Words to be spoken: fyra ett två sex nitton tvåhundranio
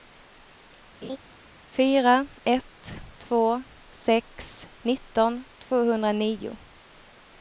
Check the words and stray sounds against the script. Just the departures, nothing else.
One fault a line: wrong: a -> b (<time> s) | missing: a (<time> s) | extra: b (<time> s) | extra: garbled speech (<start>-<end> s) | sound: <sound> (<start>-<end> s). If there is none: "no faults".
sound: laugh (1.0-1.2 s)